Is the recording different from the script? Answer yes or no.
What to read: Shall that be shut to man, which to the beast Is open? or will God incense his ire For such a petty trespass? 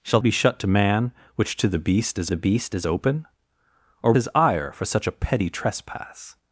yes